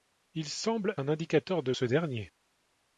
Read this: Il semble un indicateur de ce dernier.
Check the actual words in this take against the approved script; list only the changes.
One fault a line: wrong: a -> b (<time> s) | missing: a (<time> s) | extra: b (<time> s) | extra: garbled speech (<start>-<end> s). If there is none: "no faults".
no faults